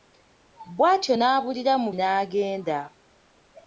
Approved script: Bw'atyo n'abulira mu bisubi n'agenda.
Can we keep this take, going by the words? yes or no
no